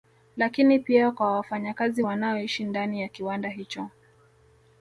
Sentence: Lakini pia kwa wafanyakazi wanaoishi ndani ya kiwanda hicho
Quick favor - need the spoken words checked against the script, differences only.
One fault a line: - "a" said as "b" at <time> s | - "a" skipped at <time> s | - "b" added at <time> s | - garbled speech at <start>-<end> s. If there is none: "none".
none